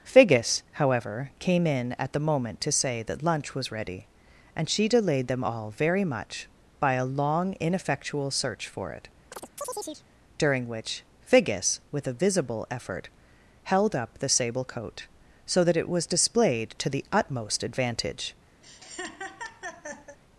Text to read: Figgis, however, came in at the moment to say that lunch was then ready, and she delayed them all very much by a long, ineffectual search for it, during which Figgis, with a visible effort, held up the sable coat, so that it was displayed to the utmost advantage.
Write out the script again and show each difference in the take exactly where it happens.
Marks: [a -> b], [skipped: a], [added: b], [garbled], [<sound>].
Figgis, however, came in at the moment to say that lunch was [skipped: then] ready, and she delayed them all very much by a long, ineffectual search for it, [chirp] during which Figgis, with a visible effort, held up the sable coat, so that it was displayed to the utmost advantage. [laugh]